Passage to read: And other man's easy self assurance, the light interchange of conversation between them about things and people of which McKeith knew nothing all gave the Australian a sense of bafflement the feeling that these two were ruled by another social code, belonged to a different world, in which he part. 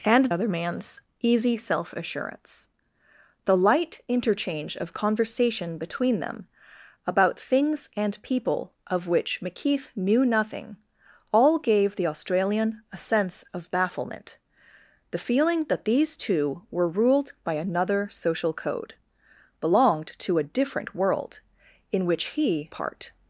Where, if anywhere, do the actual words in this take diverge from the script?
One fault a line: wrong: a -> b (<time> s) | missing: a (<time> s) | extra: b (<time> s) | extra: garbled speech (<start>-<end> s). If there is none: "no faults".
no faults